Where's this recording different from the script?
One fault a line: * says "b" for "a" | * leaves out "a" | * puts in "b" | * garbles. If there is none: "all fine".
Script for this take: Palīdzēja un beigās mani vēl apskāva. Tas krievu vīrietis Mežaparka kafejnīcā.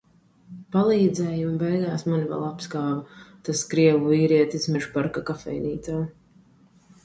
all fine